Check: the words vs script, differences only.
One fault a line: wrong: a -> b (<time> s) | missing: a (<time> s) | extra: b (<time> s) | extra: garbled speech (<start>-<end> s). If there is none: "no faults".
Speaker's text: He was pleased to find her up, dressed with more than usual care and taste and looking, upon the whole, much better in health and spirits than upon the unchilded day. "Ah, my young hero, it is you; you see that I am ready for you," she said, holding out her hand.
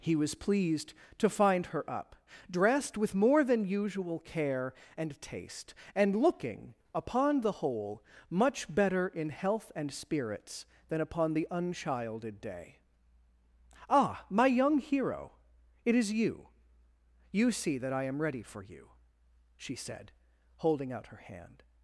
no faults